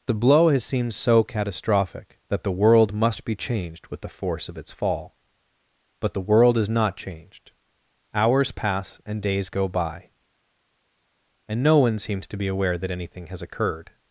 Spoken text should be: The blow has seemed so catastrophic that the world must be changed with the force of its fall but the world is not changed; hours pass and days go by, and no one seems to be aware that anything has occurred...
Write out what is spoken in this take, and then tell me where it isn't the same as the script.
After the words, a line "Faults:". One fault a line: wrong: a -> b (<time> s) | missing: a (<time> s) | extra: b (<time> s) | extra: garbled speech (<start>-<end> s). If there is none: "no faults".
The blow has seemed so catastrophic that the world must be changed with the force of its fall but the world is not changed; hours pass and days go by, and no one seems to be aware that anything has occurred...
Faults:
no faults